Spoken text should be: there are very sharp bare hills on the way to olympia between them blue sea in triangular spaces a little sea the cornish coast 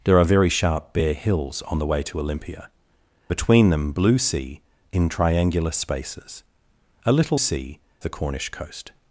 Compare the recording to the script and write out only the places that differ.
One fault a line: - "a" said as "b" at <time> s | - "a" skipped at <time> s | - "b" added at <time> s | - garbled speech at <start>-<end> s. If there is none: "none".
none